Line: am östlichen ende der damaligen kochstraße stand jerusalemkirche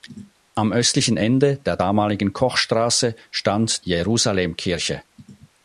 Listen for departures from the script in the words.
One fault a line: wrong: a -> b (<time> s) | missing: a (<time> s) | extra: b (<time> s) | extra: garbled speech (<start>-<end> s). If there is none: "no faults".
no faults